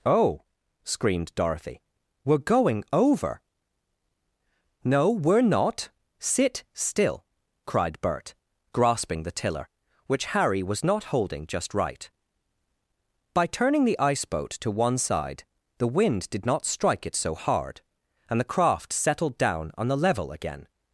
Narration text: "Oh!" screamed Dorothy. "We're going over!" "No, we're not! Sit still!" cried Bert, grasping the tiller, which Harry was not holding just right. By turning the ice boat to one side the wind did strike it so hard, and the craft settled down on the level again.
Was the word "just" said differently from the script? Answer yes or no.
no